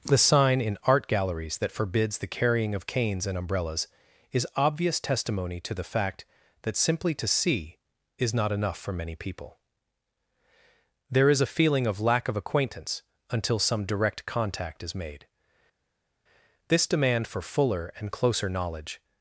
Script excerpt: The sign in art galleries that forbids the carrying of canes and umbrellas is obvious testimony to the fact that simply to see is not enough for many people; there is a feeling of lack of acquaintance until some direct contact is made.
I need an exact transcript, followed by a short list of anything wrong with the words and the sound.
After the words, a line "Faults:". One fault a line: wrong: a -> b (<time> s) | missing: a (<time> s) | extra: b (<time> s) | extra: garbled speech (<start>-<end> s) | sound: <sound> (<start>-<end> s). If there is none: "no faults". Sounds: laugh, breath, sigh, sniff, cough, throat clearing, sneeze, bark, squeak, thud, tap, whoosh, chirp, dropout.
The sign in art galleries that forbids the carrying of canes and umbrellas is obvious testimony to the fact that simply to see is not enough for many people; there is a feeling of lack of acquaintance until some direct contact is made. This demand for fuller and closer knowledge
Faults:
extra: This demand for fuller and closer knowledge (16.7 s)